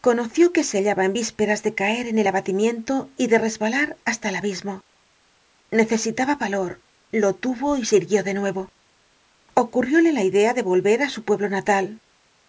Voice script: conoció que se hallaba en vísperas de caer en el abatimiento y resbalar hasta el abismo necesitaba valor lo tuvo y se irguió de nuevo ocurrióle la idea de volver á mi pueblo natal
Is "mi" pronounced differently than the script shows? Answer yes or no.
yes